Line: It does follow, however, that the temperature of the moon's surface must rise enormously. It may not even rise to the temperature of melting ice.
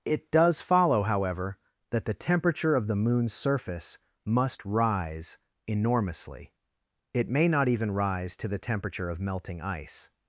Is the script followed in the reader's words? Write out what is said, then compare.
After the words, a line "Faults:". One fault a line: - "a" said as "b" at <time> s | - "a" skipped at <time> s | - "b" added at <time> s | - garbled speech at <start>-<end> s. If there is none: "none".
It does follow, however, that the temperature of the moon's surface must rise enormously. It may not even rise to the temperature of melting ice.
Faults:
none